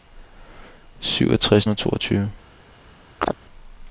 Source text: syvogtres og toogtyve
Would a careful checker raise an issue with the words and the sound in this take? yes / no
yes